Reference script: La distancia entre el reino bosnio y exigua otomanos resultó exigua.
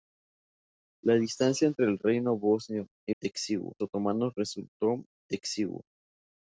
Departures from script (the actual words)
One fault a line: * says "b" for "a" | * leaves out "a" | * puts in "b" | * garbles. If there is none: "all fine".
all fine